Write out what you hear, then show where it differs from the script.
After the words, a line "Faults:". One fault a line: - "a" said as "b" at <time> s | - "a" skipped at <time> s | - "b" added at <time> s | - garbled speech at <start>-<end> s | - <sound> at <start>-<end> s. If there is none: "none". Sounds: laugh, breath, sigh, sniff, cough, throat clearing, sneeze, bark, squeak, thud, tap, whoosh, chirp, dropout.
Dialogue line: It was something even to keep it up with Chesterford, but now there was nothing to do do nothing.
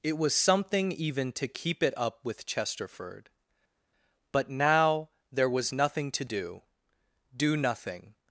It was something even to keep it up with Chesterford, but now there was nothing to do do nothing.
Faults:
none